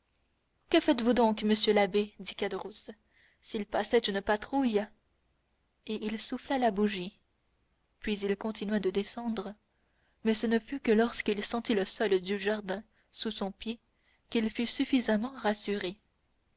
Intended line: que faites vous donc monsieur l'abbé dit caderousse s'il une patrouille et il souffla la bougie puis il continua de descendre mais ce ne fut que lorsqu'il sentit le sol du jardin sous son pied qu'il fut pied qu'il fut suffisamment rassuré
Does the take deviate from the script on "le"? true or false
false